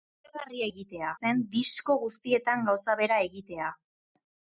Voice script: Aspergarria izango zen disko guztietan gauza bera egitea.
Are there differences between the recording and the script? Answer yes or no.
yes